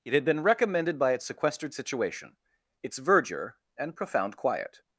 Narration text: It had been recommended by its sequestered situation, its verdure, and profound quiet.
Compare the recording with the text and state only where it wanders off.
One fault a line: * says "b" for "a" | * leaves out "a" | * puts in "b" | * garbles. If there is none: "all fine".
all fine